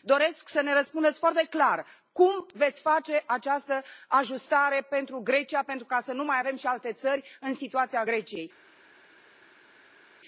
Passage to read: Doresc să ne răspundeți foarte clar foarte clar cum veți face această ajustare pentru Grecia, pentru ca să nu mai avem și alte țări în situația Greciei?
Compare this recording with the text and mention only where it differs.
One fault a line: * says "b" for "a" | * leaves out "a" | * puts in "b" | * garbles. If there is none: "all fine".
* leaves out "foarte clar"